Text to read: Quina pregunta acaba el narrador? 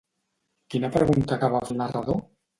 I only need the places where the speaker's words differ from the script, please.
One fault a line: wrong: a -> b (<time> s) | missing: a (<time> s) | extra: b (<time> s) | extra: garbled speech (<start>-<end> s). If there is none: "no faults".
no faults